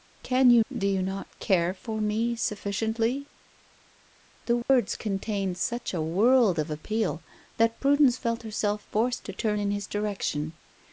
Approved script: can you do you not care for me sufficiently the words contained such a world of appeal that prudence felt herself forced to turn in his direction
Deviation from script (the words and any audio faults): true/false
true